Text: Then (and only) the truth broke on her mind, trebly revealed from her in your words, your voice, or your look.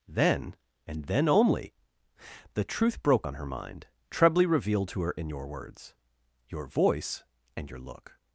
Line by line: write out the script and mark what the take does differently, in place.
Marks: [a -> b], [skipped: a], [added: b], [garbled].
Then (and [added: then] only) the truth broke on her mind, trebly revealed [from -> to] her in your words, your voice, [or -> and] your look.